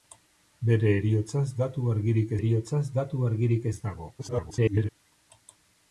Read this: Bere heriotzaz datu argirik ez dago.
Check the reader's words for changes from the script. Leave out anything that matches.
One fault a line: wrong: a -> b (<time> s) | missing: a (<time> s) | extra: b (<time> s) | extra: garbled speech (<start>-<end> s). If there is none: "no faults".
extra: heriotzaz datu argirik (2.4 s)
extra: garbled speech (4.2-4.9 s)